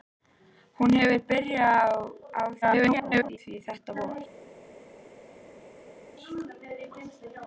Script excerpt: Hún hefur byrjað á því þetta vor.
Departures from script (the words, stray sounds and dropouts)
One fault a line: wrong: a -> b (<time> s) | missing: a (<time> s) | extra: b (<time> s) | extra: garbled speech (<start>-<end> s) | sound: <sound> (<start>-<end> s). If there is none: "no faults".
extra: garbled speech (2.6-3.4 s)